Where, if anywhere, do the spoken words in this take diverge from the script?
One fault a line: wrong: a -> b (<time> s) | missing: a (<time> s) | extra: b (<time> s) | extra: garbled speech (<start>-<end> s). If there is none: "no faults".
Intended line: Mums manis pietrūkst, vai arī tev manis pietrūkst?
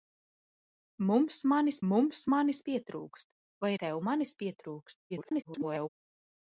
extra: mums manis (1.9 s)
missing: arī (3.7 s)
extra: garbled speech (5.1-5.9 s)